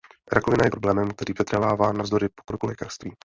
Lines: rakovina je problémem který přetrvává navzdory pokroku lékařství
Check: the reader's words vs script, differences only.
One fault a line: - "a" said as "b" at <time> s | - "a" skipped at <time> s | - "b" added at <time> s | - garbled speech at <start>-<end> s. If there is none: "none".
none